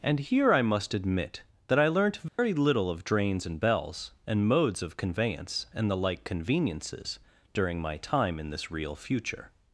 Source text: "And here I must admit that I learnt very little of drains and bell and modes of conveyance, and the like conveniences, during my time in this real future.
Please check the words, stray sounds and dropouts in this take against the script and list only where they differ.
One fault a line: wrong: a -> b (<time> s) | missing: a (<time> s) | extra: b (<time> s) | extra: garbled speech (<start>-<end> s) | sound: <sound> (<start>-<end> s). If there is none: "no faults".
sound: dropout (2.3-2.4 s)
wrong: bell -> bells (3.6 s)